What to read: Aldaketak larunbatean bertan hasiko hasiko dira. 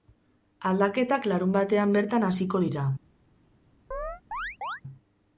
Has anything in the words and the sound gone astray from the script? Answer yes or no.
yes